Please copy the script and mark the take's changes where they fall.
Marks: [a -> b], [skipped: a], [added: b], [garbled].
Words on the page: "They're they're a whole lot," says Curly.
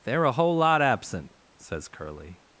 "They're [skipped: they're] a whole lot," [added: absent] says Curly.